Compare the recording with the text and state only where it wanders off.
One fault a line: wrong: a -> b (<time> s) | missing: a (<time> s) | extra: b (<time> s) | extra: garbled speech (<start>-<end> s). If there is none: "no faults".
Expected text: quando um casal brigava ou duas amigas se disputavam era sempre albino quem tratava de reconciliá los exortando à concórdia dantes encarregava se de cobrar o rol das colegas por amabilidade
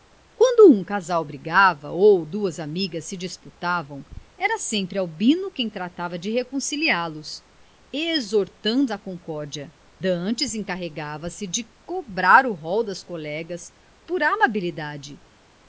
no faults